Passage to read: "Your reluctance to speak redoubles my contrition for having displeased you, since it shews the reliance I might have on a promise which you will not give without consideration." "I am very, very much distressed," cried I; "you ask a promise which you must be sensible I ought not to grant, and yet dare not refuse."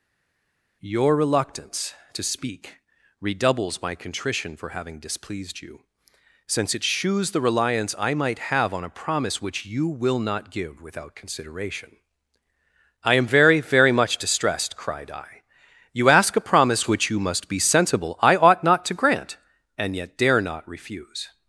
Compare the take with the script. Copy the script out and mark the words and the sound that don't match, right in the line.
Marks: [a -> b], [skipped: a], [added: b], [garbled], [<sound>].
"Your reluctance to speak redoubles my contrition for having displeased you, since it shews the reliance I might have on a promise which you will not give without consideration." "I am very, very much distressed," cried I; "you ask a promise which you must be sensible I ought not to grant, and yet dare not refuse."